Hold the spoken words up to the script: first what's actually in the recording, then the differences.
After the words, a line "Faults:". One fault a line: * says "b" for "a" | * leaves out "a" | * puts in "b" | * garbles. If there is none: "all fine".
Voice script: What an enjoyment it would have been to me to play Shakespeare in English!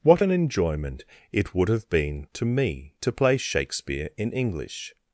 What an enjoyment it would have been to me to play Shakespeare in English!
Faults:
all fine